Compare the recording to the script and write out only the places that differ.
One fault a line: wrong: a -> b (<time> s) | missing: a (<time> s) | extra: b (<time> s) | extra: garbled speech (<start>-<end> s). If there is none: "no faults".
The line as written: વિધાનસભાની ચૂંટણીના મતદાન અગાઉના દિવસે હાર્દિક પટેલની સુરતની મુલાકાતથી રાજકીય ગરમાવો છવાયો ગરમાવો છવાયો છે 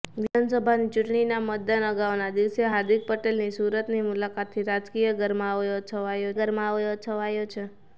no faults